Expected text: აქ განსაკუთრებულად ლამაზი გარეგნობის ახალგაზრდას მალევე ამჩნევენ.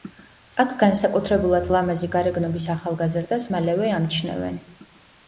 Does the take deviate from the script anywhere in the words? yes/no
no